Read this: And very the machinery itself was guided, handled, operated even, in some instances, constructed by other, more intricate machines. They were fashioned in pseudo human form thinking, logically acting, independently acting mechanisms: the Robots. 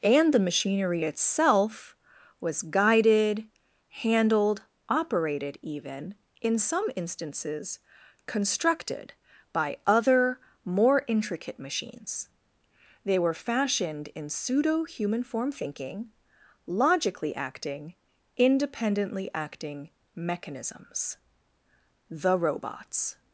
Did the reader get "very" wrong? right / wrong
wrong